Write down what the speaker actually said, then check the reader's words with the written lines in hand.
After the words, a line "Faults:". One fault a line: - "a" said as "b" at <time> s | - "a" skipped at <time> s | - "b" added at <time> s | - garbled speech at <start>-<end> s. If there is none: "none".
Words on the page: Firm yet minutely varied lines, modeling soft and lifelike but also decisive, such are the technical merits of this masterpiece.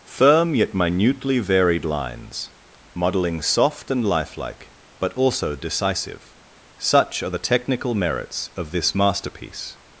Firm yet minutely varied lines, modeling soft and lifelike but also decisive, such are the technical merits of this masterpiece.
Faults:
none